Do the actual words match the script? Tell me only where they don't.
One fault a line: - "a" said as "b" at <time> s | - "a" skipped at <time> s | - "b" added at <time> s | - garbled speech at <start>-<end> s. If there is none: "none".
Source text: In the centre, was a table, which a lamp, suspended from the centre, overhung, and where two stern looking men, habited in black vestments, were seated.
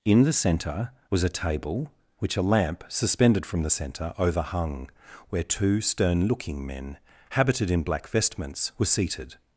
- "and" skipped at 4.9 s